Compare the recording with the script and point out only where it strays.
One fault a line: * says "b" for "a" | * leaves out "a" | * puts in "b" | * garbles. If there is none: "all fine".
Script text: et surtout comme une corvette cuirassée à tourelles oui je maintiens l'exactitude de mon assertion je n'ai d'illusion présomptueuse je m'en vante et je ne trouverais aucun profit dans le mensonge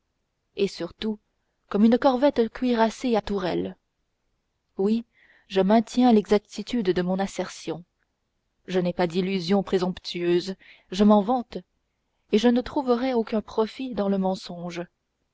* puts in "pas"